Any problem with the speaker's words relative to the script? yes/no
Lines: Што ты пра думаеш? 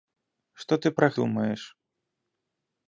no